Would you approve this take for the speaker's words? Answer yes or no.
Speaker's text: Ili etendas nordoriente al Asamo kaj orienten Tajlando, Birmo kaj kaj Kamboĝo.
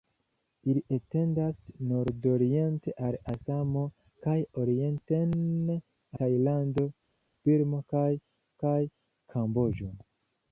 yes